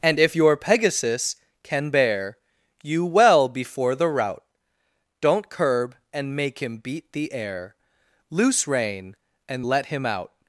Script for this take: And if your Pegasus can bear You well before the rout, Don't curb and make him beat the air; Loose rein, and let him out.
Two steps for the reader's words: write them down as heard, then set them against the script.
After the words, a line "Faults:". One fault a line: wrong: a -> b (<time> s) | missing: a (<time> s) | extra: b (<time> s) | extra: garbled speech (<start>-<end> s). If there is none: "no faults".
And if your Pegasus can bear You well before the rout, Don't curb and make him beat the air; Loose rein, and let him out.
Faults:
no faults